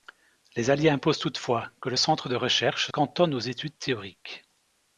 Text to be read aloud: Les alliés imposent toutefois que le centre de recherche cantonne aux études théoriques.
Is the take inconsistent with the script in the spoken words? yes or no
no